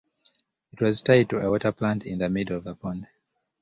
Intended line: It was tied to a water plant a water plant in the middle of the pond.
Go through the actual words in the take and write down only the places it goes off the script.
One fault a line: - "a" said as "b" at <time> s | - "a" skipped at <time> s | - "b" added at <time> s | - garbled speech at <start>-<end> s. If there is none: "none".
- "a water plant" skipped at 2.1 s